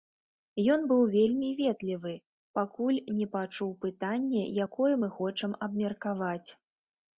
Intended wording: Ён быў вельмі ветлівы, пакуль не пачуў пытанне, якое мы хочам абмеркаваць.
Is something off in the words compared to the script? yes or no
no